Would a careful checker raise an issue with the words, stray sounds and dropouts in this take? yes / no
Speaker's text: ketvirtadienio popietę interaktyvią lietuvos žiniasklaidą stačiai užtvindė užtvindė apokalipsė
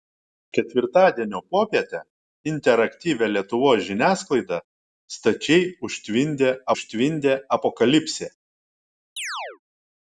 yes